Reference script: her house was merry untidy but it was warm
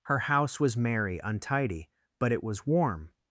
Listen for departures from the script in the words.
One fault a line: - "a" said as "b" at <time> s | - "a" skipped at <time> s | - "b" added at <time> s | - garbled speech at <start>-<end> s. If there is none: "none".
none